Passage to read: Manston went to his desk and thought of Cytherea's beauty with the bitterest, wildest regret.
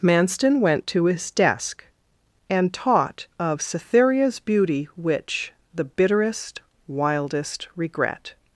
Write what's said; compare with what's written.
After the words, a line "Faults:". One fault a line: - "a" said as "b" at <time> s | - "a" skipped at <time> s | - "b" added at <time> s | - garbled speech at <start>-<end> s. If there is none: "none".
Manston went to his desk and taught of Cytherea's beauty which the bitterest, wildest regret.
Faults:
- "thought" said as "taught" at 2.7 s
- "with" said as "which" at 5.0 s